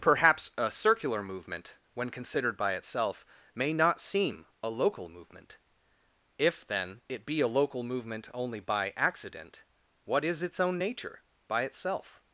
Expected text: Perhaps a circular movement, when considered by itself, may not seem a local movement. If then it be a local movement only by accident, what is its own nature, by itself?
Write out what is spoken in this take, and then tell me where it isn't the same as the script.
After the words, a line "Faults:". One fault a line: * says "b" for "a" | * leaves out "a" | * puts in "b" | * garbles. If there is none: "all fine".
Perhaps a circular movement, when considered by itself, may not seem a local movement. If then it be a local movement only by accident, what is its own nature, by itself?
Faults:
all fine